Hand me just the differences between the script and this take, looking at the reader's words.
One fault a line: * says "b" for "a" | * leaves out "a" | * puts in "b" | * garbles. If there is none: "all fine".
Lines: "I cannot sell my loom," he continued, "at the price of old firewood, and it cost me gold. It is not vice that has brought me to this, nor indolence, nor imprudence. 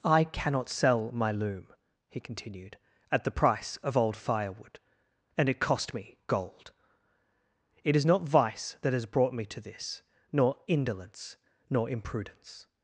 all fine